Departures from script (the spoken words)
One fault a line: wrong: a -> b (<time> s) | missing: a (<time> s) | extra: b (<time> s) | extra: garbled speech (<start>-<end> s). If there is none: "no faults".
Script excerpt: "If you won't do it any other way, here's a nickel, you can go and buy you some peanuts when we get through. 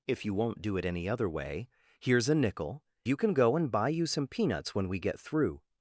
no faults